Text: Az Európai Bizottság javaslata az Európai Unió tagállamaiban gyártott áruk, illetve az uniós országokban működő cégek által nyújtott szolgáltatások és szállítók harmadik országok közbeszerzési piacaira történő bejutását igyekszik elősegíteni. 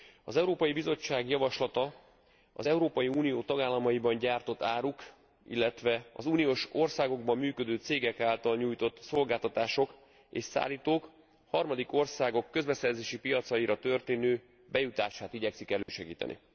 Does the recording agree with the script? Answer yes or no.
yes